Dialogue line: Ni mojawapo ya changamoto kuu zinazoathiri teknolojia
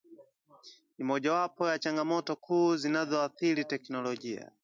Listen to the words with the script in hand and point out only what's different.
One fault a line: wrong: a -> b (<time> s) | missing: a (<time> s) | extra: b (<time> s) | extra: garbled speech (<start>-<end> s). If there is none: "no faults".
no faults